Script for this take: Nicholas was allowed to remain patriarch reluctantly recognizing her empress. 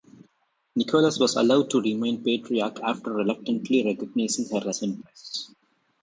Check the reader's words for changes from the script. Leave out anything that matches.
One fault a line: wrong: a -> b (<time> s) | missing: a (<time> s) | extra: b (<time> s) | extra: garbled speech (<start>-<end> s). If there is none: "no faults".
extra: after (2.8 s)
extra: as (4.7 s)